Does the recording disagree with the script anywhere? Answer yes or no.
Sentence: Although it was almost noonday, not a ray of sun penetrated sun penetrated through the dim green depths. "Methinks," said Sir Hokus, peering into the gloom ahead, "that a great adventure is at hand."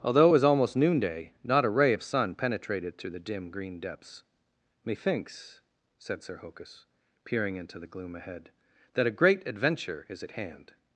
yes